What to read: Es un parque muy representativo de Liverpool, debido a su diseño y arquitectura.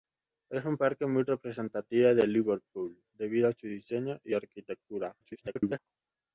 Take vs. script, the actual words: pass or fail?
fail